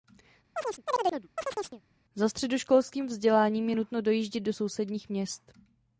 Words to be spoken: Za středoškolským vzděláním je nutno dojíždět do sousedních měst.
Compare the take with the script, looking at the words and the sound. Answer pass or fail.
fail